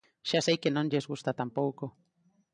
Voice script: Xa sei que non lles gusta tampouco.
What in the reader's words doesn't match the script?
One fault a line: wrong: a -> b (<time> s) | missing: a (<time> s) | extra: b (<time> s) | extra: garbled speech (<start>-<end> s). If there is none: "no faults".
no faults